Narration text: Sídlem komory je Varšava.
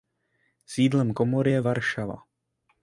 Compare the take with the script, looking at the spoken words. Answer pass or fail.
pass